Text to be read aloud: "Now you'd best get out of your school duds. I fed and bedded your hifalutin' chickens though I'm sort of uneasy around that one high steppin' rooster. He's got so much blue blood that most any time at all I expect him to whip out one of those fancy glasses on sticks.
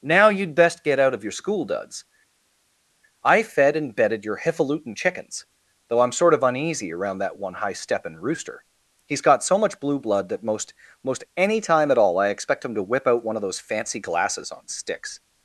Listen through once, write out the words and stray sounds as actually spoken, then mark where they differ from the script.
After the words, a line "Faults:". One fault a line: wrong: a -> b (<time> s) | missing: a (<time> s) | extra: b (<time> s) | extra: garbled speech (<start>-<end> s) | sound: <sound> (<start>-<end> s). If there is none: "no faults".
"Now you'd best get out of your school duds. I fed and bedded your hifalutin' chickens though I'm sort of uneasy around that one high steppin' rooster. He's got so much blue blood that most most any time at all I expect him to whip out one of those fancy glasses on sticks.
Faults:
extra: most (11.0 s)